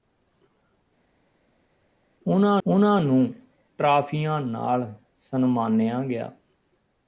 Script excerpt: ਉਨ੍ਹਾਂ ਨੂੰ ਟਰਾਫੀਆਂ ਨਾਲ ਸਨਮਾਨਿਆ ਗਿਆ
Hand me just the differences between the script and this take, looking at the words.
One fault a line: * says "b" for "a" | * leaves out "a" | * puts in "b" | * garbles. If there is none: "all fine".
* puts in "ਉਨ੍ਹਾਂ"